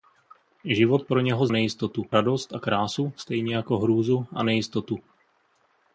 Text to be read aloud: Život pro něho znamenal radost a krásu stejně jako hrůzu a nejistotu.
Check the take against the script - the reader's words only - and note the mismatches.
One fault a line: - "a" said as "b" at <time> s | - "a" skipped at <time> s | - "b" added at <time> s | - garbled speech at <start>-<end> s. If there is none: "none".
- "znamenal" said as "nejistotu" at 1.5 s